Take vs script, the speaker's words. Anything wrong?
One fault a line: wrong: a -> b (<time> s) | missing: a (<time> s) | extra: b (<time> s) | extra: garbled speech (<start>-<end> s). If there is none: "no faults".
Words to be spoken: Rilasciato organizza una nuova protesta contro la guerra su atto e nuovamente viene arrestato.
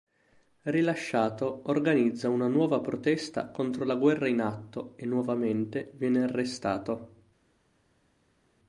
wrong: su -> in (4.3 s)